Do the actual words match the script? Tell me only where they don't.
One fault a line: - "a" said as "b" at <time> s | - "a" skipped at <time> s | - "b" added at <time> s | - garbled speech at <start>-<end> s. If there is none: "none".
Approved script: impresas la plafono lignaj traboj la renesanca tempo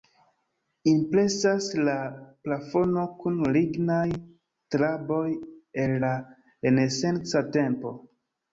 - "kun" added at 3.2 s
- "el" added at 5.8 s